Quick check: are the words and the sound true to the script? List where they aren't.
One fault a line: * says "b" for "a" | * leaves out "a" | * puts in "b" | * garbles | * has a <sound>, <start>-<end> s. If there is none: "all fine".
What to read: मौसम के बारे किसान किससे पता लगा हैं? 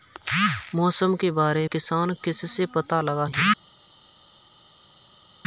all fine